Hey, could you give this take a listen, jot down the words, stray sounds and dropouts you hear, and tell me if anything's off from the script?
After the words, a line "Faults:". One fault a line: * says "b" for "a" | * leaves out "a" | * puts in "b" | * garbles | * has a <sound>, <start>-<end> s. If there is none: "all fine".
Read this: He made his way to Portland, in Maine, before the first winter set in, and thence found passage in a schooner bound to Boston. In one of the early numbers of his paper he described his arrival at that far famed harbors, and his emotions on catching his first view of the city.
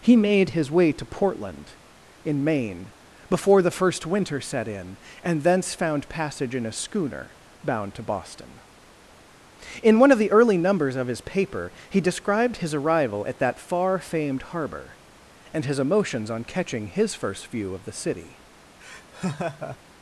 He made his way to Portland, in Maine, before the first winter set in, and thence found passage in a schooner bound to Boston. In one of the early numbers of his paper he described his arrival at that far famed harbor, and his emotions on catching his first view of the city.
Faults:
* says "harbor" for "harbors"
* has a laugh, 18.8-19.8 s